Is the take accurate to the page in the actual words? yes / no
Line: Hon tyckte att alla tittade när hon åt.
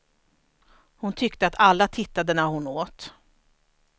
yes